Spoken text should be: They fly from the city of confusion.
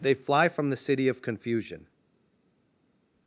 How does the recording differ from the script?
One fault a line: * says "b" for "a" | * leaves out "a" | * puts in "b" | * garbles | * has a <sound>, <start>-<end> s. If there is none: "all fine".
all fine